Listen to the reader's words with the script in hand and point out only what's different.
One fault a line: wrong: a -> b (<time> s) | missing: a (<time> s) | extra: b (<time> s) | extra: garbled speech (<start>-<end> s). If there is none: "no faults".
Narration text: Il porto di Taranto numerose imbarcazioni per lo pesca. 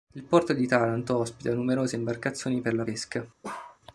extra: ospita (1.2 s)
wrong: lo -> la (2.7 s)